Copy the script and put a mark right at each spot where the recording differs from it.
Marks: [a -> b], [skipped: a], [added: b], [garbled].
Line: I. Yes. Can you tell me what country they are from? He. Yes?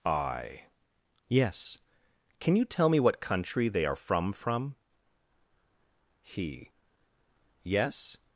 I. Yes. Can you tell me what country they are from? [added: from] He. Yes?